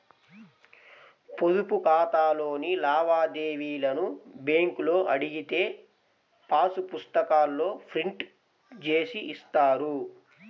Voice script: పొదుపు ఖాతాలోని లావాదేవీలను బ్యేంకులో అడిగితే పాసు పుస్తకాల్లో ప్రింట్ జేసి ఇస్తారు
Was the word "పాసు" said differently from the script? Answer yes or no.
no